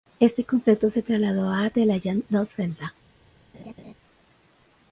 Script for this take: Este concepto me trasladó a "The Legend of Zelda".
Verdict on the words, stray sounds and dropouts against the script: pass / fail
fail